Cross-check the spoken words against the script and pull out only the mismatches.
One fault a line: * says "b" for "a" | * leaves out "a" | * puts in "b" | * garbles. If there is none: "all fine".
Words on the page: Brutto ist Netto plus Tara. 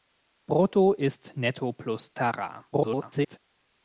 * garbles